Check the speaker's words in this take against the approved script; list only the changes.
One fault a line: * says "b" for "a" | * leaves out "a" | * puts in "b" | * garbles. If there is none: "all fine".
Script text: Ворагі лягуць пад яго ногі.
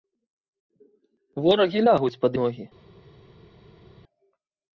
* leaves out "яго"